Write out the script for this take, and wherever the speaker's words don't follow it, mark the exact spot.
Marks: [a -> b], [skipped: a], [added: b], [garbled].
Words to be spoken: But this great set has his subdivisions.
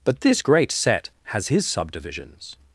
But this great set has his subdivisions.